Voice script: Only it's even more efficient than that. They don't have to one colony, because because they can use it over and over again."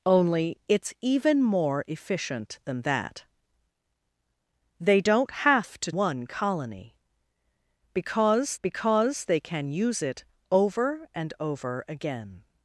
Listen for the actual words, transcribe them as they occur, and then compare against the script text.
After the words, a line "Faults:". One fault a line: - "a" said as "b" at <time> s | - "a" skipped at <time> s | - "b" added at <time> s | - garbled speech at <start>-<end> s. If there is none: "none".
Only it's even more efficient than that. They don't have to one colony, because because they can use it over and over again."
Faults:
none